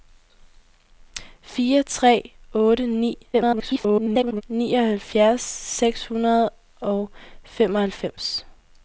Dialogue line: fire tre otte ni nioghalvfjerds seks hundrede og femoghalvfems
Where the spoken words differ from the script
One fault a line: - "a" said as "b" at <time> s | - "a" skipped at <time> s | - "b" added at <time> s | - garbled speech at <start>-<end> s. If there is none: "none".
- garbled speech at 3.3-4.4 s